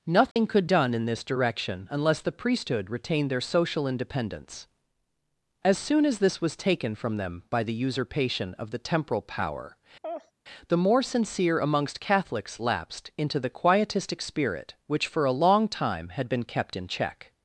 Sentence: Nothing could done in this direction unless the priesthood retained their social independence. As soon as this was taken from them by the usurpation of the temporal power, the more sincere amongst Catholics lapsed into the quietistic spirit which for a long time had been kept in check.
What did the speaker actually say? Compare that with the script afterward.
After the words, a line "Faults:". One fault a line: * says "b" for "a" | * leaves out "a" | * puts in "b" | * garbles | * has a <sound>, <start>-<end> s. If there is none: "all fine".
Nothing could done in this direction unless the priesthood retained their social independence. As soon as this was taken from them by the usurpation of the temporal power, the more sincere amongst Catholics lapsed into the quietistic spirit which for a long time had been kept in check.
Faults:
* has a dropout, 0.3-0.4 s
* has a laugh, 10.0-10.3 s